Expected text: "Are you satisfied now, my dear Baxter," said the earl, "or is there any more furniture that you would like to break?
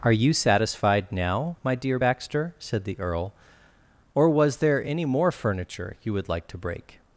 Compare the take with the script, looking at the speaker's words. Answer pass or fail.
fail